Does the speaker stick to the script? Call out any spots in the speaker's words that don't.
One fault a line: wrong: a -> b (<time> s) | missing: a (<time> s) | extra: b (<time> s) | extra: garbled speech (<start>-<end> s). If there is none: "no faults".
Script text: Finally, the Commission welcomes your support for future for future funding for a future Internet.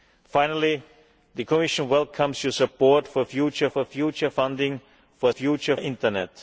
no faults